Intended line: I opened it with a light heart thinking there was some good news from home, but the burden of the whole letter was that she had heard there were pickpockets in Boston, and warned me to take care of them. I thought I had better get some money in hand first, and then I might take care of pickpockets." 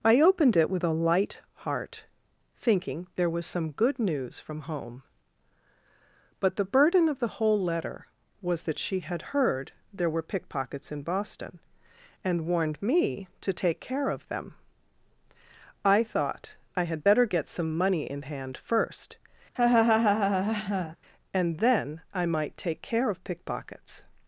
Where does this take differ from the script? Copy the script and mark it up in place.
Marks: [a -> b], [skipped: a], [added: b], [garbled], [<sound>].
I opened it with a light heart thinking there was some good news from home, but the burden of the whole letter was that she had heard there were pickpockets in Boston, and warned me to take care of them. I thought I had better get some money in hand first, [laugh] and then I might take care of pickpockets."